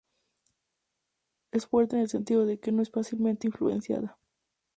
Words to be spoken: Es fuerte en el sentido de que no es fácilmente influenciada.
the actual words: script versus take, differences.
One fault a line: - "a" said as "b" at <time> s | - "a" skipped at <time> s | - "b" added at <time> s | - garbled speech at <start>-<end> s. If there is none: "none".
none